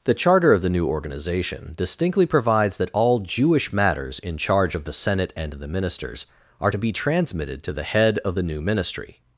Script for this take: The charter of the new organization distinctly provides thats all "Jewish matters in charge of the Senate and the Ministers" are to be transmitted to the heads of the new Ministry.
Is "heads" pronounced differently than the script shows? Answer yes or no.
yes